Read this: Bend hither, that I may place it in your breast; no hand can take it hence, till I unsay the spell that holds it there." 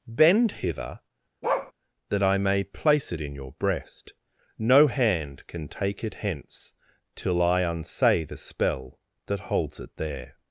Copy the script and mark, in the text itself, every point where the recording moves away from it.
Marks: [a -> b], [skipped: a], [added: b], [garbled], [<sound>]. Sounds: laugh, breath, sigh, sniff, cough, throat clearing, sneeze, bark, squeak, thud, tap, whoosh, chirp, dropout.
Bend hither, [bark] that I may place it in your breast; no hand can take it hence, till I unsay the spell that holds it there."